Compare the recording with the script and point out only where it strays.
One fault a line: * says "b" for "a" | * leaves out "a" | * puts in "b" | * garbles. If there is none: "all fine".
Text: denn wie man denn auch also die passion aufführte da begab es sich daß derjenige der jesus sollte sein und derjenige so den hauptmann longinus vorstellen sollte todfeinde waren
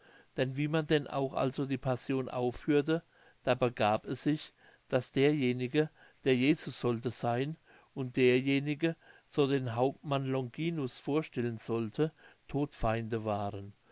all fine